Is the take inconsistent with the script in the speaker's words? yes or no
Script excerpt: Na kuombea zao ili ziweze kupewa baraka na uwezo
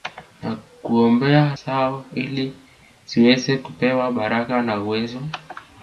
no